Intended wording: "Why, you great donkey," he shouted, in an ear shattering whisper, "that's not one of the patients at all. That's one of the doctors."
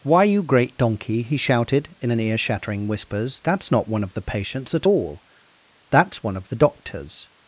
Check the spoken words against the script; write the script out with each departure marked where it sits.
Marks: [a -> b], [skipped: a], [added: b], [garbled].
"Why, you great donkey," he shouted, in an ear shattering [whisper, -> whispers] "that's not one of the patients at all. That's one of the doctors."